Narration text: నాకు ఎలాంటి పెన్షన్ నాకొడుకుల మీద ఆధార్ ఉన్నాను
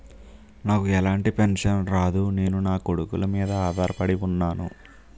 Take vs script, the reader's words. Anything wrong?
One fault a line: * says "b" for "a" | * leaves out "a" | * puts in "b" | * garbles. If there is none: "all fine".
* puts in "రాదు నేను"
* puts in "పడి"